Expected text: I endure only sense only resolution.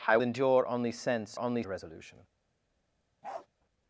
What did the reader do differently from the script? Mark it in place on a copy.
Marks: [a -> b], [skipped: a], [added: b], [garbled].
I endure only sense only resolution.